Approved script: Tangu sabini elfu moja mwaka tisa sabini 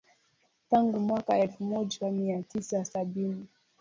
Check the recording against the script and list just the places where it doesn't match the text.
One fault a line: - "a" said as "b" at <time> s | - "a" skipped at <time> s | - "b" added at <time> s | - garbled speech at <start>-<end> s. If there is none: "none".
- "sabini" said as "mwaka" at 1.0 s
- "mwaka" said as "mia" at 2.1 s